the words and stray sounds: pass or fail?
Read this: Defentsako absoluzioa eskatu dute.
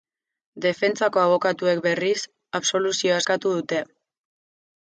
fail